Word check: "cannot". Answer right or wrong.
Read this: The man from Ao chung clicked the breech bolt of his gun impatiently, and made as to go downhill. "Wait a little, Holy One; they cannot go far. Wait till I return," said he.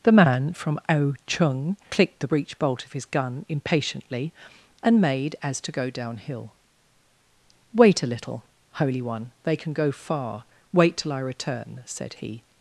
wrong